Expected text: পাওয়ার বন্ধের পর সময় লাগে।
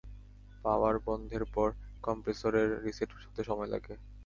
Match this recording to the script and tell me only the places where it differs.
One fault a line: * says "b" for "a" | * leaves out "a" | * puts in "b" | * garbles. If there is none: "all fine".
* puts in "কম্প্রেসরের রিসেট হতে"